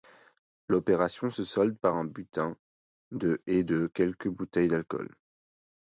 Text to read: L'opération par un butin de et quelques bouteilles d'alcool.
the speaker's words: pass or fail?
fail